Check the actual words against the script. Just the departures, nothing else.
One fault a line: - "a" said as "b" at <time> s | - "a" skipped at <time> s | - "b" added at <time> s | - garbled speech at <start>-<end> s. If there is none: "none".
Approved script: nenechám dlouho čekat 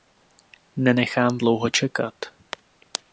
none